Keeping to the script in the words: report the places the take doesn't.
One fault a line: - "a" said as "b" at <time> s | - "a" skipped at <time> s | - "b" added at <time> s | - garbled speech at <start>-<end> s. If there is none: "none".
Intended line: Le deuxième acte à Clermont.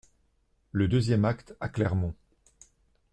none